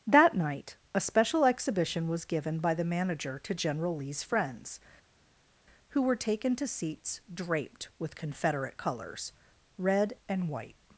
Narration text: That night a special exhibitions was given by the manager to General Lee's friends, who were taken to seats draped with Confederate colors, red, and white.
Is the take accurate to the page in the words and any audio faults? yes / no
no